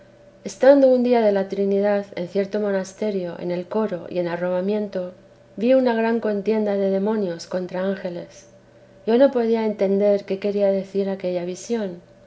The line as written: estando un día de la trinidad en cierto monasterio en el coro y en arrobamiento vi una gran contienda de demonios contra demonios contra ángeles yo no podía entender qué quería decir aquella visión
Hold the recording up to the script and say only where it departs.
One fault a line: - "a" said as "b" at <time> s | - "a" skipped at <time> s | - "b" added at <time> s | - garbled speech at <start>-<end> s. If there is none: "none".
- "demonios contra" skipped at 7.8 s